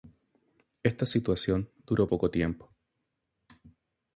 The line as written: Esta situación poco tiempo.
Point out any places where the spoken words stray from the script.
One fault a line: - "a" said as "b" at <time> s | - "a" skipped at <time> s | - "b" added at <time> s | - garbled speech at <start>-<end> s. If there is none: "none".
- "duró" added at 1.9 s